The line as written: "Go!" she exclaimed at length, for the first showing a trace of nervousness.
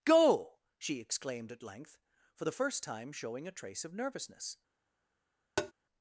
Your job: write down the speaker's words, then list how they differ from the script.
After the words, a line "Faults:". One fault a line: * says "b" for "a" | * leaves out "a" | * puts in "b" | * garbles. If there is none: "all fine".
"Go!" she exclaimed at length, for the first time showing a trace of nervousness.
Faults:
* puts in "time"